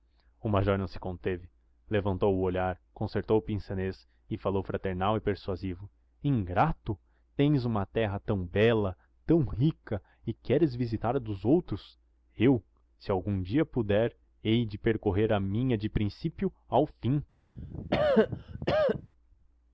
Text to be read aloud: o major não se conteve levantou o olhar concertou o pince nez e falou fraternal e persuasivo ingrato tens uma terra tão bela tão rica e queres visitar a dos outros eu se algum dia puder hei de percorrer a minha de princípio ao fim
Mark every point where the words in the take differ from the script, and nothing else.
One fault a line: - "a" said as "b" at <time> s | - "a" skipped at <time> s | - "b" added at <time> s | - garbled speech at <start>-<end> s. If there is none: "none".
none